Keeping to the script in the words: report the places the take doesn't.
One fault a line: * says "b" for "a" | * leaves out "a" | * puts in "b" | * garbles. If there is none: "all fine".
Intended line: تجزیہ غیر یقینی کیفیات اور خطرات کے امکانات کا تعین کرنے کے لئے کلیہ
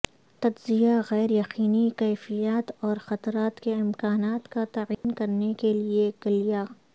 all fine